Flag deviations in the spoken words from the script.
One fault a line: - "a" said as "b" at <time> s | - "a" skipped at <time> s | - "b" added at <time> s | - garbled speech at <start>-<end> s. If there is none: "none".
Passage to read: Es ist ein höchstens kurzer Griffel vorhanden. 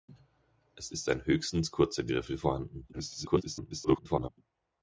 - garbled speech at 2.9-4.3 s